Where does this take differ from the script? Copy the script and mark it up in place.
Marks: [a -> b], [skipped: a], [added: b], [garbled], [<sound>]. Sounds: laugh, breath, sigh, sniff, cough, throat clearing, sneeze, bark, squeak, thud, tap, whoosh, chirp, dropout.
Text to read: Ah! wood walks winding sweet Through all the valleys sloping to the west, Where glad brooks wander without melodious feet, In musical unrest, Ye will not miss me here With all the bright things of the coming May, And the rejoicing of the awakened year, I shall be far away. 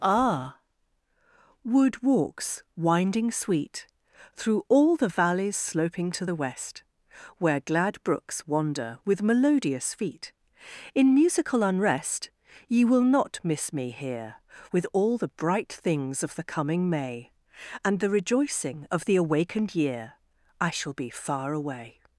Ah! wood walks winding sweet Through all the valleys sloping to the west, Where glad brooks wander [without -> with] melodious feet, In musical unrest, Ye will not miss me here With all the bright things of the coming May, And the rejoicing of the awakened year, I shall be far away.